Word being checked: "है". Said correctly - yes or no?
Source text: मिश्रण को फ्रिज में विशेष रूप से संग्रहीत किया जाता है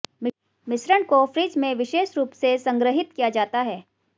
yes